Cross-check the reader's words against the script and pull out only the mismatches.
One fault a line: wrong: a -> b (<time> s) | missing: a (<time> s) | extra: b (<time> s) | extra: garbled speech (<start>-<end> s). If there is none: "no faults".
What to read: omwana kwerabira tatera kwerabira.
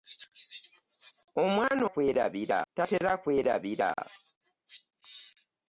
no faults